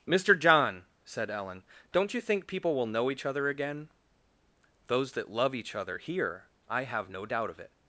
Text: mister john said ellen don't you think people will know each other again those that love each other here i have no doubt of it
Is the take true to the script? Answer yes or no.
yes